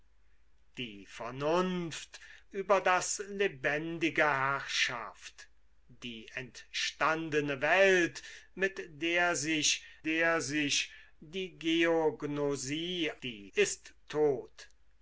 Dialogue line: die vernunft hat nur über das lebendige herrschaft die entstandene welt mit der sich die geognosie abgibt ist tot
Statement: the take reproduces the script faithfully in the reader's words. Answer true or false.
false